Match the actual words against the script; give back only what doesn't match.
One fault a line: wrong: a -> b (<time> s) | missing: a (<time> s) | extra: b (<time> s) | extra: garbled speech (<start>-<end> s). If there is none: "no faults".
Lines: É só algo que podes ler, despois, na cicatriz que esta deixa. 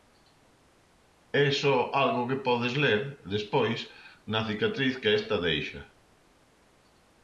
no faults